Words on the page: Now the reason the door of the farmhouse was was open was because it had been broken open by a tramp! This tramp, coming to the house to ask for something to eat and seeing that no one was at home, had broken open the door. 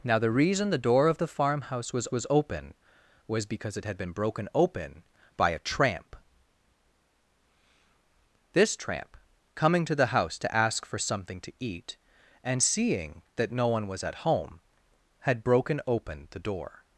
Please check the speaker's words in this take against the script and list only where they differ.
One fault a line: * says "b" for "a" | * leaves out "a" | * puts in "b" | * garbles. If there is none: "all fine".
all fine